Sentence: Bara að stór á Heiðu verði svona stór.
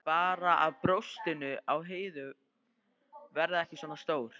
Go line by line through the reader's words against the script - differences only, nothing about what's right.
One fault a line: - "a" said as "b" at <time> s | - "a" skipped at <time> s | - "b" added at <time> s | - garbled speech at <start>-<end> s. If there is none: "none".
- "stór" said as "brjóstin" at 0.8 s
- "ekki" added at 3.6 s